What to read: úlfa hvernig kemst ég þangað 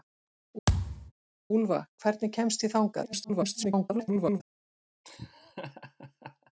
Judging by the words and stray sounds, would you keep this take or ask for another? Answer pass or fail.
fail